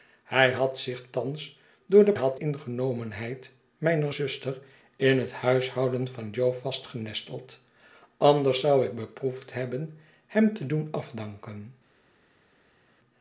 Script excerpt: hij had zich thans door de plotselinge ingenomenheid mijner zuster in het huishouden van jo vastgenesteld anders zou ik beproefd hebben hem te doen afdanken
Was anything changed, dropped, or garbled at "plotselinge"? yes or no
yes